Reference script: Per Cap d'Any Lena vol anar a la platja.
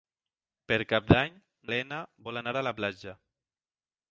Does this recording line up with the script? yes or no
yes